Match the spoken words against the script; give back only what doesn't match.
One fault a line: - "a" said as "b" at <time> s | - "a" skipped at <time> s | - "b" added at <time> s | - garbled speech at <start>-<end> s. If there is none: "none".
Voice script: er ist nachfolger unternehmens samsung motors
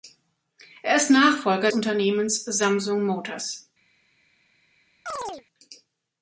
none